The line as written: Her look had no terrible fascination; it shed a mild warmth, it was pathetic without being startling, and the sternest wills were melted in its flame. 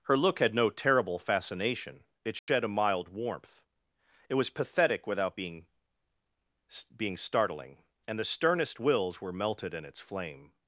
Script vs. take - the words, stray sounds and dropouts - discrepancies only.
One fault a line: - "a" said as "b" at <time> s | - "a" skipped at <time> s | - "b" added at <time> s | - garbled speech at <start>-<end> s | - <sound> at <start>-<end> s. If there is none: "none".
- dropout at 2.4-2.5 s
- "being" added at 6.9 s